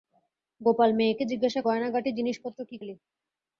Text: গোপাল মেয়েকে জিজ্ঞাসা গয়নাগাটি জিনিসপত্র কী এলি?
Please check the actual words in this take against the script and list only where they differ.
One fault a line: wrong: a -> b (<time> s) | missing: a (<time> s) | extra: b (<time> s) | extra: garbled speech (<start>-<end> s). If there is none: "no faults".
no faults